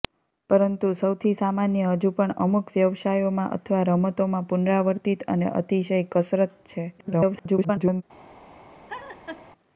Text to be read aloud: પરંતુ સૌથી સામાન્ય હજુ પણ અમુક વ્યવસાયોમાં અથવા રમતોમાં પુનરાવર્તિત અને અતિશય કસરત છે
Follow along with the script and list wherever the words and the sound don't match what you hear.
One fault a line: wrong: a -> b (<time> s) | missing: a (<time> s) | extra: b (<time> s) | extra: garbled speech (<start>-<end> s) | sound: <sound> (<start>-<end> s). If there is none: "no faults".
extra: garbled speech (7.0-8.0 s)
sound: laugh (8.9-9.5 s)